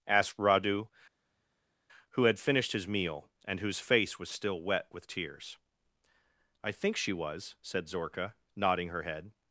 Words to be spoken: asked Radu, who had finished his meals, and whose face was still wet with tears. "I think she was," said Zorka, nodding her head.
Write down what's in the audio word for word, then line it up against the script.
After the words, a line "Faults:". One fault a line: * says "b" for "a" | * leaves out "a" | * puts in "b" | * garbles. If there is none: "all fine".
asked Radu, who had finished his meal, and whose face was still wet with tears. "I think she was," said Zorka, nodding her head.
Faults:
* says "meal" for "meals"